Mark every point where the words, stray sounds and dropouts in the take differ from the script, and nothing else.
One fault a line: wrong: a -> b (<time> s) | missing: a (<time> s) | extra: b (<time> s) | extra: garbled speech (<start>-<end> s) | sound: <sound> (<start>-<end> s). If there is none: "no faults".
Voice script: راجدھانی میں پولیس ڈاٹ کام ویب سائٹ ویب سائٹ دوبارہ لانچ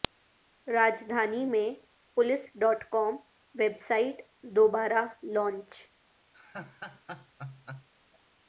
missing: ویب سائٹ (4.2 s)
sound: laugh (6.3-7.9 s)